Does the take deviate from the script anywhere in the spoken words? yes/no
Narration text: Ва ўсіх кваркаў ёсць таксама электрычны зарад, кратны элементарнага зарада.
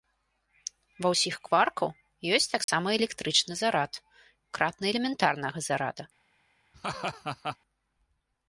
no